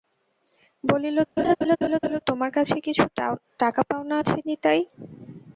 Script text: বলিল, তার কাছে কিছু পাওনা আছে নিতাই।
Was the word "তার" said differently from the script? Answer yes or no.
yes